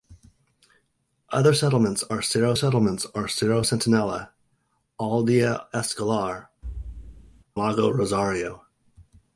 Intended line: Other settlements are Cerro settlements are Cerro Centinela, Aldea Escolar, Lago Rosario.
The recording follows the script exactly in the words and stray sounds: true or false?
false